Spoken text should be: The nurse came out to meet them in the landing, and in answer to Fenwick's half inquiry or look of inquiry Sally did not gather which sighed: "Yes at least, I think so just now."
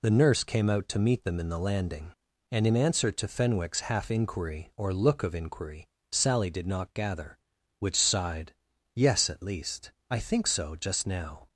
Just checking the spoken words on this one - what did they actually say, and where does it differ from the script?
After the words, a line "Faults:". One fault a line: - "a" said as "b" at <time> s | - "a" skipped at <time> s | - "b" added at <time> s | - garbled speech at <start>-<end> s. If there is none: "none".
The nurse came out to meet them in the landing, and in answer to Fenwick's half inquiry or look of inquiry Sally did not gather which sighed: "Yes at least, I think so just now."
Faults:
none